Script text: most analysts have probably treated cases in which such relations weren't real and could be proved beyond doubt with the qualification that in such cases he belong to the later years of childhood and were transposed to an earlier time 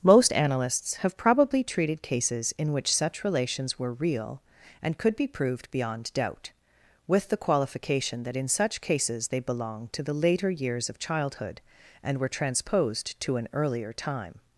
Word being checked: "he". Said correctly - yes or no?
no